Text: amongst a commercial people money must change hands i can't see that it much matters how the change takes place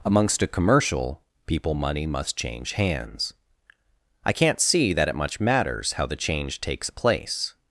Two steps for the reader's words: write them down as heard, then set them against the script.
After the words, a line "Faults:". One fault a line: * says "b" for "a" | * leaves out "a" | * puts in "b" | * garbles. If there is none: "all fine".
amongst a commercial people money must change hands i can't see that it much matters how the change takes place
Faults:
all fine